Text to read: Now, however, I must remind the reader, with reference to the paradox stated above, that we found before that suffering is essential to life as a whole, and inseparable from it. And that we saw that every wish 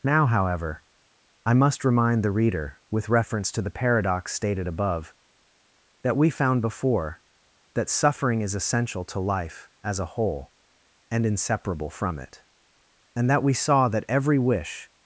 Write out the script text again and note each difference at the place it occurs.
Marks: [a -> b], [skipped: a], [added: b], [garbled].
Now, however, I must remind the reader, with reference to the paradox stated above, that we found before that suffering is essential to life as a whole, and inseparable from it. And that we saw that every wish